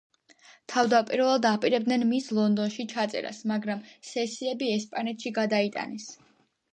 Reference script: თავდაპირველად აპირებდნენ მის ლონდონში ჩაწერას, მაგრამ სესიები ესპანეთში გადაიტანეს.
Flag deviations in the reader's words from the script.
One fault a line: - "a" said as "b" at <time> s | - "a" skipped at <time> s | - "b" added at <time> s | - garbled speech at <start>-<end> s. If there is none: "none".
none